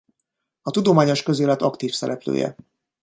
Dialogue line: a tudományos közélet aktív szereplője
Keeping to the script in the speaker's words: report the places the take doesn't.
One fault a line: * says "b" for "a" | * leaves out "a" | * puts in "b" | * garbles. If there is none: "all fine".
all fine